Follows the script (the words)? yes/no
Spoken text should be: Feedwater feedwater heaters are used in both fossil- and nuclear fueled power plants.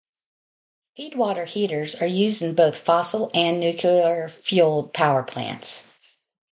no